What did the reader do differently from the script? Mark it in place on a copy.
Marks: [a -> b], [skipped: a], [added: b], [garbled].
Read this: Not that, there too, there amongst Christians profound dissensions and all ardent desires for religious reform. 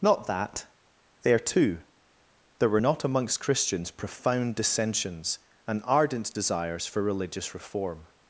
Not that, there too, there [added: were not] amongst Christians profound dissensions and [skipped: all] ardent desires for religious reform.